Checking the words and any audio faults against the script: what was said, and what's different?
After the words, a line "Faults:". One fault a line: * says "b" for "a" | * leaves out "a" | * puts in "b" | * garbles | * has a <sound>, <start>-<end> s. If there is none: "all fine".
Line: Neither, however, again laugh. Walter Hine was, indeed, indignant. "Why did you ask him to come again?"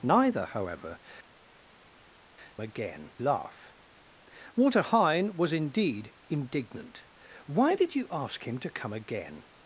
Neither, however, again laugh. Walter Hine was, indeed, indignant. "Why did you ask him to come again?"
Faults:
all fine